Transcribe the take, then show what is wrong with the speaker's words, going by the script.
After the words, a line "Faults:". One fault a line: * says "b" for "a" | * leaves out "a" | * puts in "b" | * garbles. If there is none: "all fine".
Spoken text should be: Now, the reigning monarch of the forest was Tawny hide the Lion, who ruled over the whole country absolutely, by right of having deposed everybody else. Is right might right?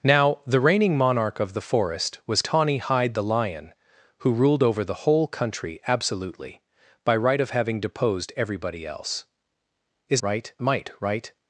Now, the reigning monarch of the forest was Tawny hide the Lion, who ruled over the whole country absolutely, by right of having deposed everybody else. Is right might right?
Faults:
all fine